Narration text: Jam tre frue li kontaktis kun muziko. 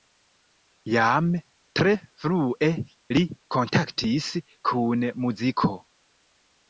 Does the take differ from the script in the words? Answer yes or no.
no